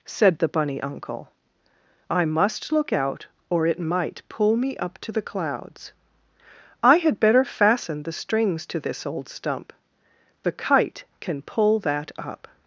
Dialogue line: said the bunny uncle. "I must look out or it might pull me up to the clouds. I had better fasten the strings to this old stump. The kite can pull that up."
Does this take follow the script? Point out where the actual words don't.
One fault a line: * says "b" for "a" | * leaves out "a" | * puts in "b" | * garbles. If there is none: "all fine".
all fine